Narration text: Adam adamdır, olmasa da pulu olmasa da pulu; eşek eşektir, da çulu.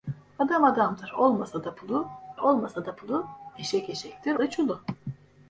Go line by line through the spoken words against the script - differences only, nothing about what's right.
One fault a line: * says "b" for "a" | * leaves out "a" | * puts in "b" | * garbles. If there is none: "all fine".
all fine